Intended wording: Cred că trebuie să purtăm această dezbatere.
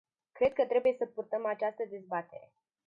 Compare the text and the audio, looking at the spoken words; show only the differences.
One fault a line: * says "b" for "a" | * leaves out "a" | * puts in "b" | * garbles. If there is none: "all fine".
all fine